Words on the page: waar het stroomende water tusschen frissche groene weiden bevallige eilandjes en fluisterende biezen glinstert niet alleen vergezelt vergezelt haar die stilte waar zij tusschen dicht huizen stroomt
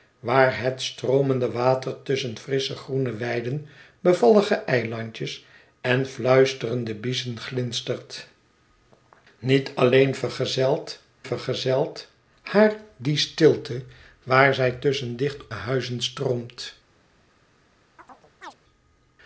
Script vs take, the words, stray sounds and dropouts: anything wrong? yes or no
yes